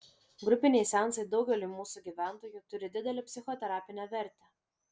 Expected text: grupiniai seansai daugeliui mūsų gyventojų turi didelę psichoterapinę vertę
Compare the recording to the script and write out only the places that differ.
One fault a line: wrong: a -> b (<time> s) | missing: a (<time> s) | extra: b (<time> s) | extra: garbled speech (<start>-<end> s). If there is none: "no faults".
no faults